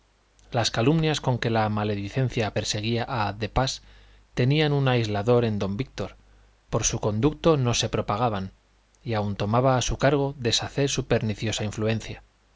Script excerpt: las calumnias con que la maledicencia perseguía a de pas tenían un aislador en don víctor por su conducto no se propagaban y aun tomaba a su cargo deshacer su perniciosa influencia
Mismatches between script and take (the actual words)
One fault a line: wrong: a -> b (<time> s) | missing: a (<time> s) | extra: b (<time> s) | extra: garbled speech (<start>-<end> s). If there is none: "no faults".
no faults